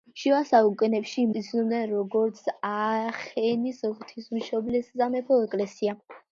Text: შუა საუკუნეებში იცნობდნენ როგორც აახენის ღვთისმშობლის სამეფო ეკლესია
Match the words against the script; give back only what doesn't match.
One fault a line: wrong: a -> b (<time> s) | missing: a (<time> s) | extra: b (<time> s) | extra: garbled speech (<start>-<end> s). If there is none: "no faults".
no faults